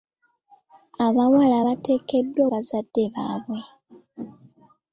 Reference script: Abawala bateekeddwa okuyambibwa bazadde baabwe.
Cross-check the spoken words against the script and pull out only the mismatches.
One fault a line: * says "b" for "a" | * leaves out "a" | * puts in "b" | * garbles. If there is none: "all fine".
* leaves out "okuyambibwa"